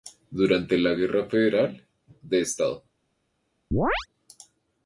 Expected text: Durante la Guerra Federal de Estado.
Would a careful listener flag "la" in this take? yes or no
no